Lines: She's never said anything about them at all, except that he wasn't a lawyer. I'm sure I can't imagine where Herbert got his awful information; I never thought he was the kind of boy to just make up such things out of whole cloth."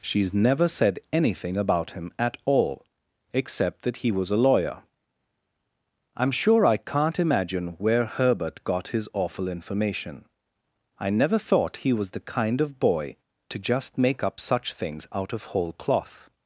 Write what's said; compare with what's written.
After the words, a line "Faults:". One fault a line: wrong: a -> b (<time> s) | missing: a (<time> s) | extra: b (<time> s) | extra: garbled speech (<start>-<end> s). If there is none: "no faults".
She's never said anything about him at all, except that he was a lawyer. I'm sure I can't imagine where Herbert got his awful information; I never thought he was the kind of boy to just make up such things out of whole cloth."
Faults:
wrong: them -> him (1.9 s)
wrong: wasn't -> was (4.1 s)